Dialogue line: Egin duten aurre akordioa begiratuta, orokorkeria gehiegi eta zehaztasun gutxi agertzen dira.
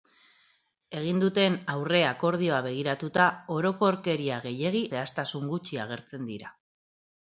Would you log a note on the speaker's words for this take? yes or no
yes